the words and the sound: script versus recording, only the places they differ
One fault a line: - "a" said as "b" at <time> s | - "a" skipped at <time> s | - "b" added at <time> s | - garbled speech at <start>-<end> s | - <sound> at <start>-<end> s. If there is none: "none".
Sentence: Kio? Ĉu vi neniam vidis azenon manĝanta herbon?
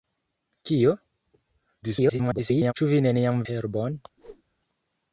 - garbled speech at 1.8-2.7 s
- "vidis azenon manĝanta" skipped at 3.4 s
- whoosh at 4.2-4.4 s